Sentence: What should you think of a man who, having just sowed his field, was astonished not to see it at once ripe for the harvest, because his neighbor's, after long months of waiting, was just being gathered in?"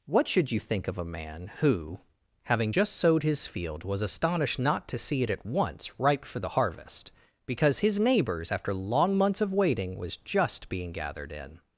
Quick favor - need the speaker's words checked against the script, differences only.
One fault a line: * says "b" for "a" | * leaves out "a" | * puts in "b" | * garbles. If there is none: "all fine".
all fine